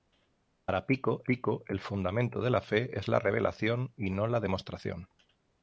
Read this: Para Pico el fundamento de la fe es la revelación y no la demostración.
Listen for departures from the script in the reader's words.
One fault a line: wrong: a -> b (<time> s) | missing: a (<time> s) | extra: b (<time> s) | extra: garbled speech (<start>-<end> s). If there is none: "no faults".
extra: Pico (1.3 s)